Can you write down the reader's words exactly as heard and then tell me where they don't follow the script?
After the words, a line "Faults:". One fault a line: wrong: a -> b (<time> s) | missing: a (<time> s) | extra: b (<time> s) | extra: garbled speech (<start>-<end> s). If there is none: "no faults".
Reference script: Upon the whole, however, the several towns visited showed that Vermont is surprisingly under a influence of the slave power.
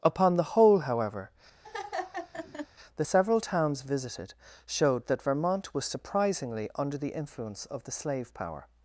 Upon the whole, however, the several towns visited showed that Vermont was surprisingly under the influence of the slave power.
Faults:
wrong: is -> was (5.7 s)
wrong: a -> the (7.0 s)